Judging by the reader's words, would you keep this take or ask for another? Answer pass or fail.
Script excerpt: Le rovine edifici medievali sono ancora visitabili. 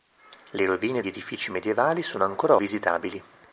pass